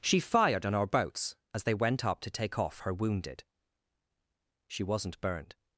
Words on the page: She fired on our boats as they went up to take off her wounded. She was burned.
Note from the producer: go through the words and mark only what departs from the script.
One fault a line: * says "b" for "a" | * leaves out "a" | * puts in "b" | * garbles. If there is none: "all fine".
* says "wasn't" for "was"